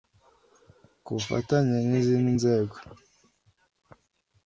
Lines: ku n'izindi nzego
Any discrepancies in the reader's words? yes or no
yes